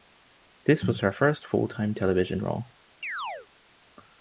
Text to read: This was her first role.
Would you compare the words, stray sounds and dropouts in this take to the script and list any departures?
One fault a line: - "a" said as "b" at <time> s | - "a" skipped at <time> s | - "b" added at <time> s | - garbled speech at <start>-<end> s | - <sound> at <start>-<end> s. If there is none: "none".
- "full time television" added at 1.4 s
- chirp at 3.0-3.5 s